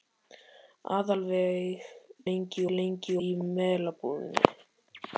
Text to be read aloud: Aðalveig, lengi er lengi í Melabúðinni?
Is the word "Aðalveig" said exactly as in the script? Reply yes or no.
yes